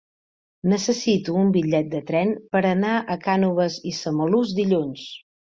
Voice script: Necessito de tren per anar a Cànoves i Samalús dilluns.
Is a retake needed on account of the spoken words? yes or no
yes